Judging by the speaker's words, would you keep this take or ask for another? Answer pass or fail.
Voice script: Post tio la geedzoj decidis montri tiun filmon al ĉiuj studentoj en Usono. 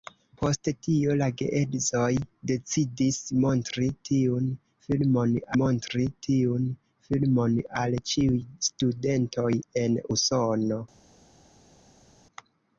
fail